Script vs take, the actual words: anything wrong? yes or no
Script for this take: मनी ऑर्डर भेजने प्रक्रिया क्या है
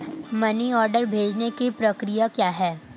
yes